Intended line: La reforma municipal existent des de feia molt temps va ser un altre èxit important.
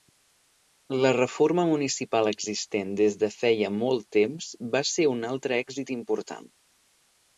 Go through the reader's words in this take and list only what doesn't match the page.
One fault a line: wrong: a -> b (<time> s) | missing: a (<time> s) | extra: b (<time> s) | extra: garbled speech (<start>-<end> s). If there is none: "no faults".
no faults